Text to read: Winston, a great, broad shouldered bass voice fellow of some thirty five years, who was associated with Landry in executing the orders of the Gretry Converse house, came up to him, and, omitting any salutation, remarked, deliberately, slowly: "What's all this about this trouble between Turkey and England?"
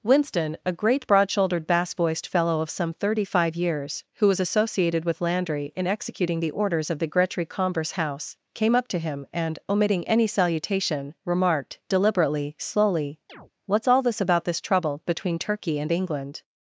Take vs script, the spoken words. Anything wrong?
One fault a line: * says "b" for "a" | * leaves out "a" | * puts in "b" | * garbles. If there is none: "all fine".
* says "voiced" for "voice"